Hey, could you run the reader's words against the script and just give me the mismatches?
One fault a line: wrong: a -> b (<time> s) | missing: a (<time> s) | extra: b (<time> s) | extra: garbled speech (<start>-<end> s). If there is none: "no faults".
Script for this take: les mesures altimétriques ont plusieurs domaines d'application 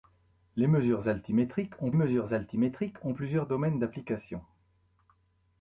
extra: mesures altimétriques ont (1.9 s)